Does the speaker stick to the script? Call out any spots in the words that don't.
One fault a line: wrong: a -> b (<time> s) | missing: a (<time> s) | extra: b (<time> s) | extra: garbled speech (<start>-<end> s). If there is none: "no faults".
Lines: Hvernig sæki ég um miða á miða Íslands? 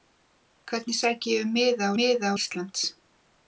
no faults